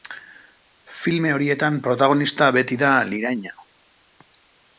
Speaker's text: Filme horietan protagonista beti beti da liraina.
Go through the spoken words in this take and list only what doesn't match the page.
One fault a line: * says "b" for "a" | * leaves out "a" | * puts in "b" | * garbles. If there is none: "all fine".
* leaves out "beti"